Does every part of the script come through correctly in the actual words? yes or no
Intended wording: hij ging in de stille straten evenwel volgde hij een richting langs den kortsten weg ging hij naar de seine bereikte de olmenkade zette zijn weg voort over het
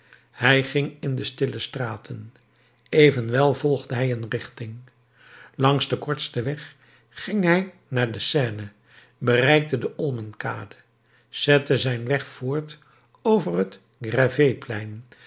yes